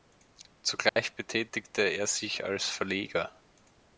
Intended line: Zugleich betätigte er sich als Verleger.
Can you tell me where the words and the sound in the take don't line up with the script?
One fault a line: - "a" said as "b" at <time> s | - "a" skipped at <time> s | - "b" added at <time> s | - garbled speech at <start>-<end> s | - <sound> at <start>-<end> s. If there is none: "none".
- dropout at 0.9-1.0 s